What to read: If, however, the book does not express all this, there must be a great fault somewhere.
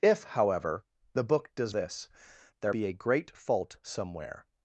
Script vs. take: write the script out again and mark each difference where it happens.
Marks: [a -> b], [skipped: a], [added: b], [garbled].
If, however, the book does [skipped: not express all] this, there [skipped: must] be a great fault somewhere.